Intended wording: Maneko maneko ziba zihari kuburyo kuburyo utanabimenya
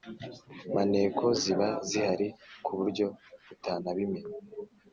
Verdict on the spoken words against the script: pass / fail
fail